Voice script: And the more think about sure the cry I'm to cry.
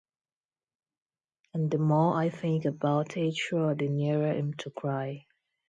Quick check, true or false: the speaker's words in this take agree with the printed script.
false